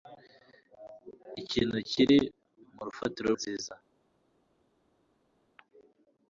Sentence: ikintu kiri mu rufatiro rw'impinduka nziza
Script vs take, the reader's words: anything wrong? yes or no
yes